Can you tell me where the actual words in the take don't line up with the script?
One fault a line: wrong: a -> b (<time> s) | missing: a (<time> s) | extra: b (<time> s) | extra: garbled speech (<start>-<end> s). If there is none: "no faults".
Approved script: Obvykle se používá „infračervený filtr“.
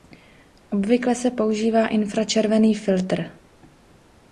no faults